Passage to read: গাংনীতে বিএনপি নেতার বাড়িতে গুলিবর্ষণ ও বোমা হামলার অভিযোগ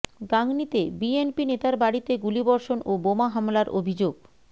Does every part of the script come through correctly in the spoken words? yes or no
yes